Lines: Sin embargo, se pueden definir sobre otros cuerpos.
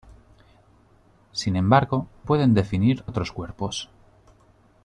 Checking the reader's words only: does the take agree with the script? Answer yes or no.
no